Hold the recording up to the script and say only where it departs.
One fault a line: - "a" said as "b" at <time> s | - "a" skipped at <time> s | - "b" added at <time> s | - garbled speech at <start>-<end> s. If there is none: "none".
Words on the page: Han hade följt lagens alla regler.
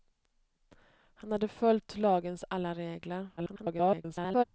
- garbled speech at 3.4-4.4 s